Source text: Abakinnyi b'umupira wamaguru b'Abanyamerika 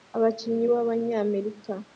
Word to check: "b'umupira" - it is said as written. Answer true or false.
false